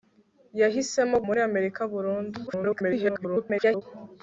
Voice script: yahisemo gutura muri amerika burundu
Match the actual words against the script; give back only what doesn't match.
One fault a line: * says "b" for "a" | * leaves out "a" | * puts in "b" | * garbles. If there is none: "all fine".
* leaves out "gutura"
* garbles